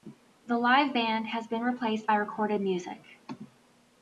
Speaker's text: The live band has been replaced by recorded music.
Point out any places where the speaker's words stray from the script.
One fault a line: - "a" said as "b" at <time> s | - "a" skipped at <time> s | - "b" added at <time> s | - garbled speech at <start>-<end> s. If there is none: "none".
none